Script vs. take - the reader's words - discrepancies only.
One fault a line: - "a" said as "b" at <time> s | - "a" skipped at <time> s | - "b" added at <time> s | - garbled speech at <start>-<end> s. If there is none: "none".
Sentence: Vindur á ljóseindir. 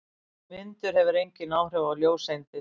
- "hefur engin áhrif" added at 1.0 s